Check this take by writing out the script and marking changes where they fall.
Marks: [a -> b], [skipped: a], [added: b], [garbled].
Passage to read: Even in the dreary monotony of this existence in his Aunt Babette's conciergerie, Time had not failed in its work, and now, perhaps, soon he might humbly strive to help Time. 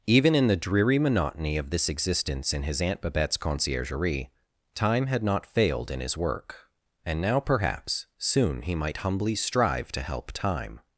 Even in the dreary monotony of this existence in his Aunt Babette's conciergerie, Time had not failed in [its -> his] work, and now, perhaps, soon he might humbly strive to help Time.